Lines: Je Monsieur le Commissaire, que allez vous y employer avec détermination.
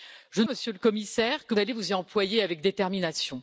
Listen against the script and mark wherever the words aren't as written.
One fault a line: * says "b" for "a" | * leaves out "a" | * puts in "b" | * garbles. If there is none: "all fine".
all fine